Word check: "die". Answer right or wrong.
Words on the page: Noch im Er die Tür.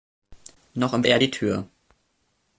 right